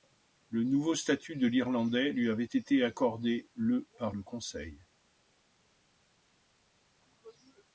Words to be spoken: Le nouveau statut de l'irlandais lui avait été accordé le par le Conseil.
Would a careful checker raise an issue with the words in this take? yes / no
no